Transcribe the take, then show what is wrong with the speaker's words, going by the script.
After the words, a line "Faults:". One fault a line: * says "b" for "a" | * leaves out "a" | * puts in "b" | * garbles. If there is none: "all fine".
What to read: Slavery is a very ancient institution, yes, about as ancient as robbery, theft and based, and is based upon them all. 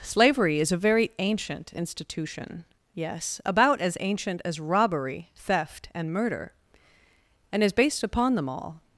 Slavery is a very ancient institution, yes, about as ancient as robbery, theft and murder, and is based upon them all.
Faults:
* says "murder" for "based"